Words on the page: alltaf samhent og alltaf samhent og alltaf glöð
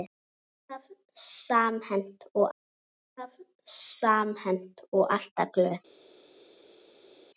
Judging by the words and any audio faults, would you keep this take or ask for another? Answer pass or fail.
pass